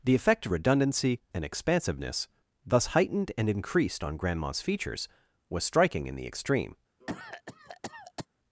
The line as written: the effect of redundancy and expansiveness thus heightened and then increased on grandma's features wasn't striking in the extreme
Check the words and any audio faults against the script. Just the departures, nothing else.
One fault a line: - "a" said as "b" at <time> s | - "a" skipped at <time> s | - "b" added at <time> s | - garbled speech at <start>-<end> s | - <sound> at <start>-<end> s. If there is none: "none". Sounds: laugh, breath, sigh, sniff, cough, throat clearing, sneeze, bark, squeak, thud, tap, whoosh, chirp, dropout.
- "then" skipped at 3.5 s
- "wasn't" said as "was" at 5.5 s
- cough at 7.0-8.3 s